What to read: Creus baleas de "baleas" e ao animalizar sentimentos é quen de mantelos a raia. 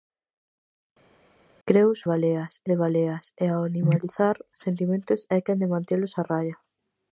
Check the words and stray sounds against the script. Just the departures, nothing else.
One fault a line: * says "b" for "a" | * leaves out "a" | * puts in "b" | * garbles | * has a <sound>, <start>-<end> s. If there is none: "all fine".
all fine